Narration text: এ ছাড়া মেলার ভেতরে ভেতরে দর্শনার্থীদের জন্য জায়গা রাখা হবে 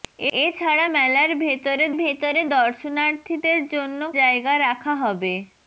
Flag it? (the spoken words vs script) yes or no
no